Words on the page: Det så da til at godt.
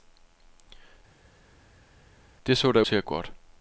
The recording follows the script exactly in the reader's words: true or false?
true